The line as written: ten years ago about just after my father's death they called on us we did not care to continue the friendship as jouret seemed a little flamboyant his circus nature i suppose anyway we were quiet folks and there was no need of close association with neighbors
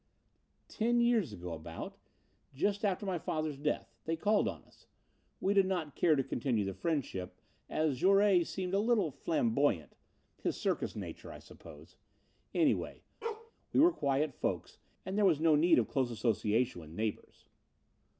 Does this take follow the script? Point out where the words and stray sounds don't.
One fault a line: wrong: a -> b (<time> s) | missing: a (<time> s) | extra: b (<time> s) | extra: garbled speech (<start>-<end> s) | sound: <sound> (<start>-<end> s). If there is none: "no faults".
sound: bark (13.2-13.5 s)